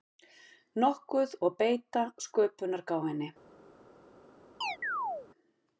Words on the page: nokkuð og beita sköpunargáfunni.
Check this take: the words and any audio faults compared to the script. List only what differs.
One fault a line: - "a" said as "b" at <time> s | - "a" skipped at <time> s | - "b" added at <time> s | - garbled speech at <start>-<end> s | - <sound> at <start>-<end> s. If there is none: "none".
- chirp at 4.6-5.3 s